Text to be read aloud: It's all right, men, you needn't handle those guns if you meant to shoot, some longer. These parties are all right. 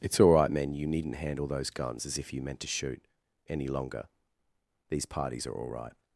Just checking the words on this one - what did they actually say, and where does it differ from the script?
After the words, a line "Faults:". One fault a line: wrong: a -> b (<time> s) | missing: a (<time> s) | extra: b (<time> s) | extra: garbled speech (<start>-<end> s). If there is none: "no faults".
It's all right, men, you needn't handle those guns as if you meant to shoot, any longer. These parties are all right.
Faults:
extra: as (2.1 s)
wrong: some -> any (3.5 s)